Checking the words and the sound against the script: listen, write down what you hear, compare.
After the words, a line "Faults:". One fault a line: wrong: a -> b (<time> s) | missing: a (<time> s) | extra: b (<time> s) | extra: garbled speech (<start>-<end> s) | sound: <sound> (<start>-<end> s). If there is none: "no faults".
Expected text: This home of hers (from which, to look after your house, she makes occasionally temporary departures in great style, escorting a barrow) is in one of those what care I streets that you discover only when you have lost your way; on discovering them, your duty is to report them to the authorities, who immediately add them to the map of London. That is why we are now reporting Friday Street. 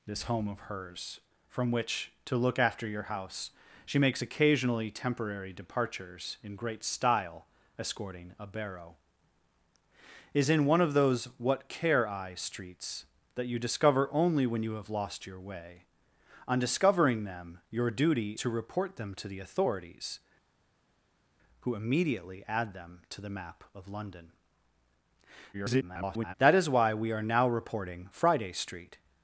This home of hers (from which, to look after your house, she makes occasionally temporary departures in great style, escorting a barrow) is in one of those what care I streets that you discover only when you have lost your way; on discovering them, your duty to report them to the authorities, who immediately add them to the map of London. [garbled] That is why we are now reporting Friday Street.
Faults:
missing: is (18.3 s)
extra: garbled speech (25.5-26.3 s)